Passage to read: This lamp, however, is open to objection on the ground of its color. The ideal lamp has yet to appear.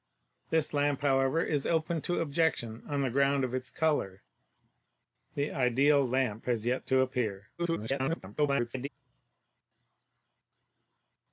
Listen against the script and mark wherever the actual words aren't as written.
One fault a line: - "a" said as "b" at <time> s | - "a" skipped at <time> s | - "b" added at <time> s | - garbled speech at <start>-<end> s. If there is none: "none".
- garbled speech at 7.6-8.9 s